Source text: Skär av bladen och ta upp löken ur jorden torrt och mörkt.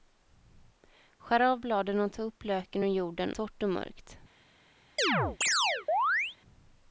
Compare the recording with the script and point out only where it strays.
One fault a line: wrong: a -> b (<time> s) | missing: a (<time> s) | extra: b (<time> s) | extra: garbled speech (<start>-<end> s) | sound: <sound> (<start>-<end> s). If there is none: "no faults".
sound: chirp (5.0-6.4 s)